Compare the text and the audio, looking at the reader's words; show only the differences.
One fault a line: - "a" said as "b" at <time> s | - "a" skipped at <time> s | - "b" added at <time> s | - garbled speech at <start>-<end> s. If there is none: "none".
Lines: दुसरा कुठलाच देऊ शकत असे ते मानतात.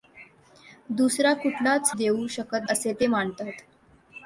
none